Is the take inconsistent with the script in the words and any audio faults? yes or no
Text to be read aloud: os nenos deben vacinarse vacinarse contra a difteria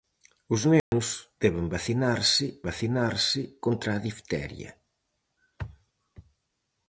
yes